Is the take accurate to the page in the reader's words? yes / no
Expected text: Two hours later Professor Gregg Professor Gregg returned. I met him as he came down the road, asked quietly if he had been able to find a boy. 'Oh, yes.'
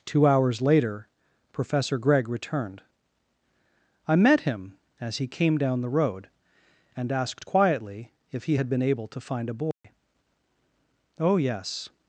no